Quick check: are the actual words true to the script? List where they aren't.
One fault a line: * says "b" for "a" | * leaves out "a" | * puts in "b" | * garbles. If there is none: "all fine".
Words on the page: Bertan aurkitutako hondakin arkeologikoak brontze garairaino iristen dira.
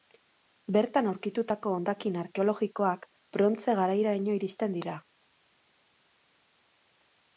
all fine